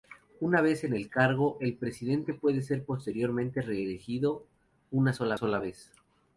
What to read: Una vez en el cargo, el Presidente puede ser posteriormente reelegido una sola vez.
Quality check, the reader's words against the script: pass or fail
fail